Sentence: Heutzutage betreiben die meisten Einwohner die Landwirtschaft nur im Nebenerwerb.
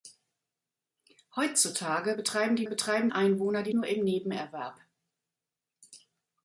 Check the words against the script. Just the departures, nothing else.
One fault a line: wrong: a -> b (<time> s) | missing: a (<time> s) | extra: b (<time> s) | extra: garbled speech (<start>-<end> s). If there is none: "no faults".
wrong: meisten -> betreiben (2.7 s)
missing: Landwirtschaft (3.7 s)